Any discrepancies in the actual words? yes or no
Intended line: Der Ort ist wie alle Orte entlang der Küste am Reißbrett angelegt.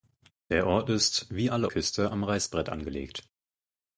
yes